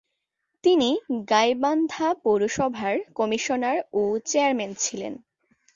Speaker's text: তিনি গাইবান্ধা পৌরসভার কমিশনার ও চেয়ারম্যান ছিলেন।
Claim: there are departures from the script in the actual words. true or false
false